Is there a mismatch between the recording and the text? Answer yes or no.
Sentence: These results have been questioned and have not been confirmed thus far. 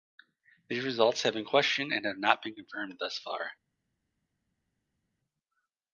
no